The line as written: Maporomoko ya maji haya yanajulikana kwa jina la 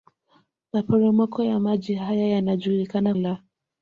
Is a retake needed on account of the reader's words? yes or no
yes